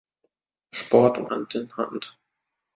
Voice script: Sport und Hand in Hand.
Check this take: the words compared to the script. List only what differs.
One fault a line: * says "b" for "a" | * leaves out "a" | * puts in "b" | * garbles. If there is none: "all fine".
all fine